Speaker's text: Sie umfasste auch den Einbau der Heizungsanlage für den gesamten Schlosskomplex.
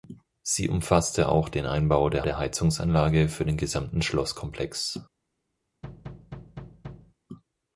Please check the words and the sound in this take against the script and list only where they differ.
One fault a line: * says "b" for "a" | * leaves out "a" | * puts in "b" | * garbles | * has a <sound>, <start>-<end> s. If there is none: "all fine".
* puts in "der"
* has a thud, 5.8-7.1 s